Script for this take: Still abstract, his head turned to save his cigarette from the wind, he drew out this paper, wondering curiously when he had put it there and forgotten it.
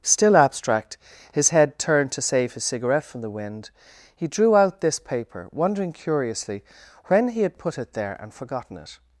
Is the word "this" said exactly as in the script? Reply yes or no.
yes